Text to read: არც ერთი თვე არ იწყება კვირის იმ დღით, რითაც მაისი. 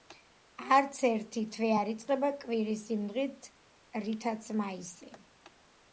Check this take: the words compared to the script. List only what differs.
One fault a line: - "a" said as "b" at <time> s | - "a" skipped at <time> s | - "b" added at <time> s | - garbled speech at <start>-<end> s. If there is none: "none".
none